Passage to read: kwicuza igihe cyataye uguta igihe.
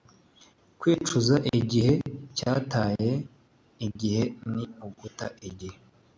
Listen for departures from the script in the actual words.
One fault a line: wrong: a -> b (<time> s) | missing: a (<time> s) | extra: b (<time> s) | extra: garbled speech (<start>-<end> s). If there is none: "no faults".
extra: igihe ni (3.9 s)